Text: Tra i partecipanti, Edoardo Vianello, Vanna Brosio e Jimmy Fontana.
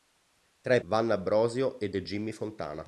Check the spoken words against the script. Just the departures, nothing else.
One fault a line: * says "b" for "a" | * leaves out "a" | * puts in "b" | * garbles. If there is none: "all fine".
* leaves out "partecipanti Edoardo Vianello"
* puts in "e"